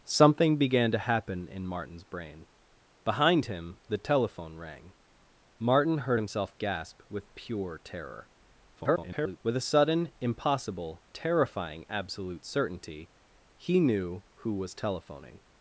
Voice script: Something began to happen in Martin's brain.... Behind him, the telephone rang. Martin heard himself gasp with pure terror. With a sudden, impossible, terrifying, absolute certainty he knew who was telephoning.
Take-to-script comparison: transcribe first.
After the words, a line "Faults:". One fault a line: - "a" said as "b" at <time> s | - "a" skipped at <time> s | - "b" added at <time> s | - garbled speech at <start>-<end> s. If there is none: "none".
Something began to happen in Martin's brain.... Behind him, the telephone rang. Martin heard himself gasp with pure terror. [garbled] With a sudden, impossible, terrifying, absolute certainty he knew who was telephoning.
Faults:
- garbled speech at 8.8-9.4 s